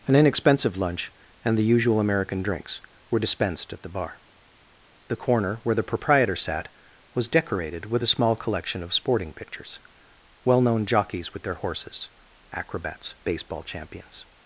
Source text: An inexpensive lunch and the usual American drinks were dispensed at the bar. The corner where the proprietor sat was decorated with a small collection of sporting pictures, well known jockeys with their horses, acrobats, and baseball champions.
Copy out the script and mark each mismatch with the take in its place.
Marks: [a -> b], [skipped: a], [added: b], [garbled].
An inexpensive lunch and the usual American drinks were dispensed at the bar. The corner where the proprietor sat was decorated with a small collection of sporting pictures, well known jockeys with their horses, acrobats, [skipped: and] baseball champions.